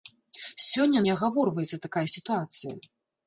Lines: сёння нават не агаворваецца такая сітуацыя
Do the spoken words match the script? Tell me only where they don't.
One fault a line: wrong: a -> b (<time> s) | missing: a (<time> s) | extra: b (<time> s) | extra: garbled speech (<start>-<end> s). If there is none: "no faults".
missing: нават (1.0 s)